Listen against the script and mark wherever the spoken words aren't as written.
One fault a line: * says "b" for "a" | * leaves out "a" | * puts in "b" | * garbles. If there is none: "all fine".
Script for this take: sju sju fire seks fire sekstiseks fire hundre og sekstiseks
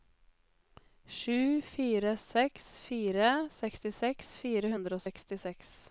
* leaves out "sju"